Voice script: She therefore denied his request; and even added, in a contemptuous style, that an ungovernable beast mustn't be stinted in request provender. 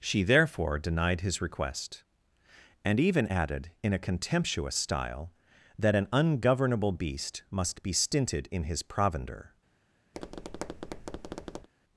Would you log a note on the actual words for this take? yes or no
yes